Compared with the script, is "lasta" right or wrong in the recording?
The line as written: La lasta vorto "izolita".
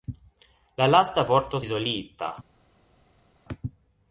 right